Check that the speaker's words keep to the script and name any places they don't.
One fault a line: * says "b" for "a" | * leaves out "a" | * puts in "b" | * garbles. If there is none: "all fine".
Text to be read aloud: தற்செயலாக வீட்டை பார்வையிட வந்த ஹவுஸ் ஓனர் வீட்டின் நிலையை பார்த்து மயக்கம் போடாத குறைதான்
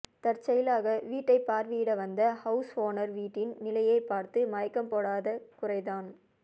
all fine